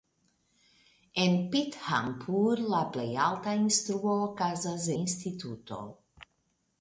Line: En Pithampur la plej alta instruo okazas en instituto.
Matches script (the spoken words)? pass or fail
fail